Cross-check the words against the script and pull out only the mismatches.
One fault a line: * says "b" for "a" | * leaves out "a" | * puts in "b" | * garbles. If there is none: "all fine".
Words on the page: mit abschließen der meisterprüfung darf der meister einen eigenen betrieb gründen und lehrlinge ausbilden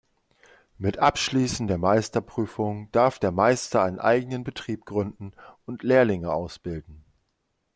all fine